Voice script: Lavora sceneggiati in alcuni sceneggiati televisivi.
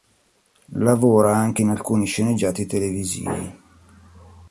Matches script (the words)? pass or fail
fail